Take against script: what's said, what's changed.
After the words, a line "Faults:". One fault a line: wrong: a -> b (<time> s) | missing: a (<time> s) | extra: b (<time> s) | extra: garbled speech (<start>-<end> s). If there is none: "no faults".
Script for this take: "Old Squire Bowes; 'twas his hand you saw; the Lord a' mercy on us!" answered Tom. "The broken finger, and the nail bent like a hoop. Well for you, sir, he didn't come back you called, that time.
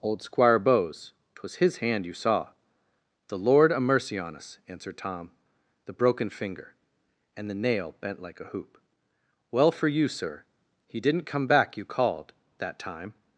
"Old Squire Bowes; 'twas his hand you saw; the Lord a' mercy on us!" answered Tom. "The broken finger, and the nail bent like a hoop. Well for you, sir, he didn't come back you called, that time.
Faults:
no faults